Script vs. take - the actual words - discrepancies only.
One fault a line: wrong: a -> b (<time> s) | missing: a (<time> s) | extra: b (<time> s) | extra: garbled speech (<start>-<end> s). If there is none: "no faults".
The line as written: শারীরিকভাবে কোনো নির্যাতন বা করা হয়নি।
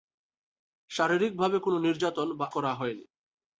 no faults